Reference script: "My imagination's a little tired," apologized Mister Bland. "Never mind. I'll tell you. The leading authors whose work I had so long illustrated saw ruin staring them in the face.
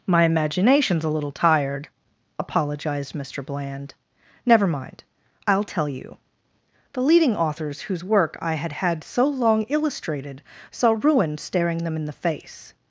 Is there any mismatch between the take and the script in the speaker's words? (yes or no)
yes